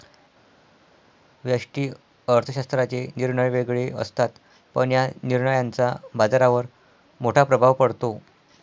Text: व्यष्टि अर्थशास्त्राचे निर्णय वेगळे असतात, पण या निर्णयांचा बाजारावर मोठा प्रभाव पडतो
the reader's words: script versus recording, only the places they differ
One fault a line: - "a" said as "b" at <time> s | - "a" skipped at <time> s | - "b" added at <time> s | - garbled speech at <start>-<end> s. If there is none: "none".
none